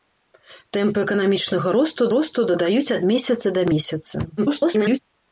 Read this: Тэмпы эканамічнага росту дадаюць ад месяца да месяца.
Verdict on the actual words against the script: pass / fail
fail